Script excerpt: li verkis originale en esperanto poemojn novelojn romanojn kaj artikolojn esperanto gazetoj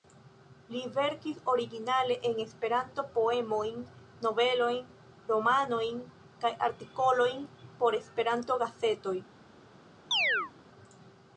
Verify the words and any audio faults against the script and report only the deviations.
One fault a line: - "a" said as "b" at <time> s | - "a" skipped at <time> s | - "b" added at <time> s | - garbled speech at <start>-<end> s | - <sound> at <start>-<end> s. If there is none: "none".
- "por" added at 7.8 s
- chirp at 10.1-10.5 s